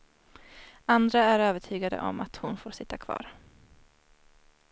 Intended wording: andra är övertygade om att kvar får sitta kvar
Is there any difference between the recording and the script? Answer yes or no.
yes